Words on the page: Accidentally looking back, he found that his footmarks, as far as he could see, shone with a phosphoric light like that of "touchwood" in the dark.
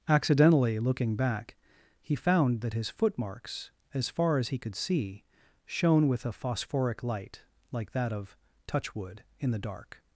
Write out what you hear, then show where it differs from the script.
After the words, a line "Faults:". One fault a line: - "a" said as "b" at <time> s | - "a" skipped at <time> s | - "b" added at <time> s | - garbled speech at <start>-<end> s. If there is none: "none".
Accidentally looking back, he found that his footmarks, as far as he could see, shone with a phosphoric light like that of "touchwood" in the dark.
Faults:
none